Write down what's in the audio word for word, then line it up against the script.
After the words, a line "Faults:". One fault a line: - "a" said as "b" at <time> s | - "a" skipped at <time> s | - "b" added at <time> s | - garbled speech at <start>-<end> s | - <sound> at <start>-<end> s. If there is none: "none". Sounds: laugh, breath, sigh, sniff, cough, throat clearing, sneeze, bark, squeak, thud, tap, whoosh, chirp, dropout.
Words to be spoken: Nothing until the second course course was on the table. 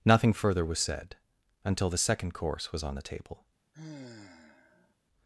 Nothing further was said until the second course was on the table.
Faults:
- "further was said" added at 0.3 s
- "course" skipped at 2.7 s
- sigh at 3.7-4.9 s